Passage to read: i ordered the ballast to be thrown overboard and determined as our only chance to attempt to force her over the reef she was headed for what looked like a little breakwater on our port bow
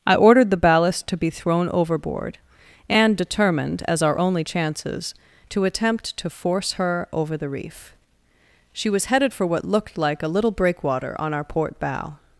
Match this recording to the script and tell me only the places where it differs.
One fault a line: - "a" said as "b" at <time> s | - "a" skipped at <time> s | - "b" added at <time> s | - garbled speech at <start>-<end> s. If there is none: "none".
- "chance" said as "chances" at 4.4 s